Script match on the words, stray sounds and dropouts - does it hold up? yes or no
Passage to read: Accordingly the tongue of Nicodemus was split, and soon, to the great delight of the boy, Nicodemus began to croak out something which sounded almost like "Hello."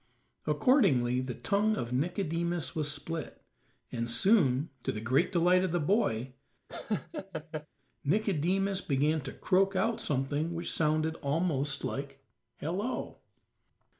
no